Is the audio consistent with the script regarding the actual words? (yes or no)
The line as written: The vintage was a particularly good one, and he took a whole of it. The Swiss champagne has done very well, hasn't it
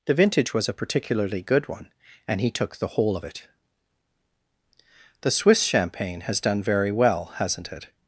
no